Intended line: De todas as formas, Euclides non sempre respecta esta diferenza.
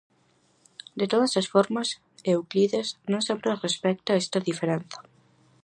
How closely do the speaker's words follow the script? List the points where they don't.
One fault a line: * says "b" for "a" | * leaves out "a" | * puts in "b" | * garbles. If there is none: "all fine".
all fine